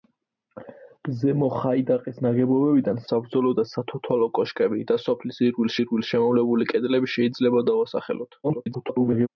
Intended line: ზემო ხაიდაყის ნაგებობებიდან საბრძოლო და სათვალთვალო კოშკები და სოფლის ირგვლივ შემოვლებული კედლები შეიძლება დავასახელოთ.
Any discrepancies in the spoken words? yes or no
yes